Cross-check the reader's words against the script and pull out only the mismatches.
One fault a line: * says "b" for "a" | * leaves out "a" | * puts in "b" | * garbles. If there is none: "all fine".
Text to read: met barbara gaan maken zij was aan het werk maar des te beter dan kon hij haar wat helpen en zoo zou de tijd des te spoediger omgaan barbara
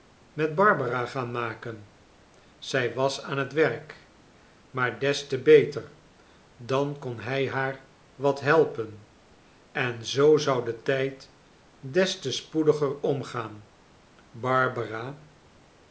all fine